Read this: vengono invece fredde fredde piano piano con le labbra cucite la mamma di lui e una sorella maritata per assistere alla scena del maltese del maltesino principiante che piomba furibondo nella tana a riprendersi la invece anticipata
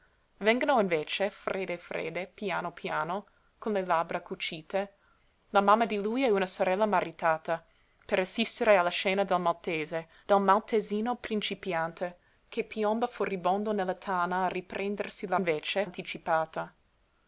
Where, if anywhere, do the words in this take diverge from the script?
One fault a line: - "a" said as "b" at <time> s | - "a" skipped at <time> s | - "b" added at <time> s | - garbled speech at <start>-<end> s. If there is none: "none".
none